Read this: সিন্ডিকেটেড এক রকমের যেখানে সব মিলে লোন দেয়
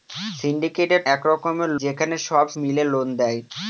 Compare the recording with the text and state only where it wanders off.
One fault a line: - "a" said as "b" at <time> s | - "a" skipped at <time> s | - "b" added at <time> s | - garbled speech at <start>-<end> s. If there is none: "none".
none